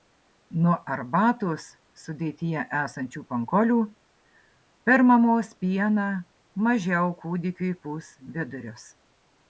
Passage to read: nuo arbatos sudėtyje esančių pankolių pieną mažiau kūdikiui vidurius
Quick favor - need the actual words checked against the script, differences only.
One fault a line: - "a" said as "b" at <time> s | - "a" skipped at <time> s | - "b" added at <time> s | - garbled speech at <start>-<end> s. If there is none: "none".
- "per mamos" added at 4.9 s
- "pūs" added at 7.8 s